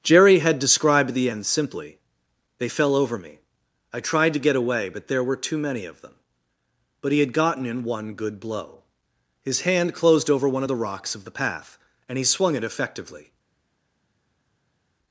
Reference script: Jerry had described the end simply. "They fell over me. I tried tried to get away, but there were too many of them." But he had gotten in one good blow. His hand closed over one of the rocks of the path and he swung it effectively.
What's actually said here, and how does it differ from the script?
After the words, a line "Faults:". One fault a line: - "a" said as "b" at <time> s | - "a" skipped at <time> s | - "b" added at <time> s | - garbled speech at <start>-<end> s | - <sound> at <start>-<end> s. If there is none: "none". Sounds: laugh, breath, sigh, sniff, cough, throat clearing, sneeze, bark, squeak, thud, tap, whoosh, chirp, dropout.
Jerry had described the end simply. "They fell over me. I tried to get away, but there were too many of them." But he had gotten in one good blow. His hand closed over one of the rocks of the path and he swung it effectively.
Faults:
- "tried" skipped at 4.3 s